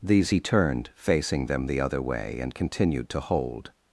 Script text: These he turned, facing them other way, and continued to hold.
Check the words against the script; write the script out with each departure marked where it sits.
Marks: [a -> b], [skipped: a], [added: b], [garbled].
These he turned, facing them [added: the] other way, and continued to hold.